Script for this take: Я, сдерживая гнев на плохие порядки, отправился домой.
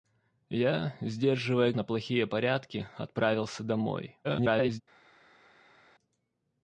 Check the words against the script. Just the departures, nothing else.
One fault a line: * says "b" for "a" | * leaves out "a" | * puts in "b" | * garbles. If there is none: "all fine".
* leaves out "гнев"
* garbles